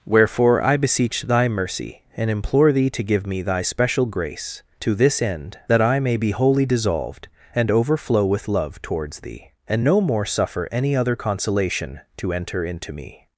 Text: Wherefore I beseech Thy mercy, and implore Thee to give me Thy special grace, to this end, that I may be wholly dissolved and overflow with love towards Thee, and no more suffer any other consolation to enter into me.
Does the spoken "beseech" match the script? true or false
true